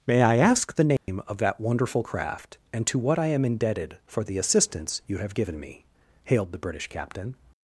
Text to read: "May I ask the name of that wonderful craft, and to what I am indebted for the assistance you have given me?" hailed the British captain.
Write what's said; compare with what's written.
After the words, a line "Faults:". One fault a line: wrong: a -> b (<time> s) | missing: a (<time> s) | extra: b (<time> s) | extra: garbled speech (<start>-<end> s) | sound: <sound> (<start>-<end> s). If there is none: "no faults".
"May I ask the name of that wonderful craft, and to what I am indebted for the assistance you have given me?" hailed the British captain.
Faults:
sound: dropout (1.0-1.1 s)